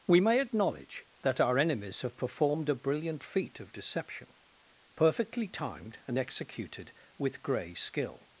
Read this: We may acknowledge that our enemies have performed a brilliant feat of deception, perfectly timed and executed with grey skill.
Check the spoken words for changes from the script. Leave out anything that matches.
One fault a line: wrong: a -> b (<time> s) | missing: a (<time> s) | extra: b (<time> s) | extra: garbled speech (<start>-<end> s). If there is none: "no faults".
no faults